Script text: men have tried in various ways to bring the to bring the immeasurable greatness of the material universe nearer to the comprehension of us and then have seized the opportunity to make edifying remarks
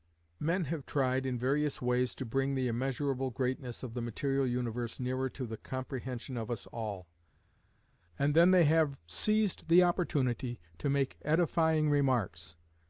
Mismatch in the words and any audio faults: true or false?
true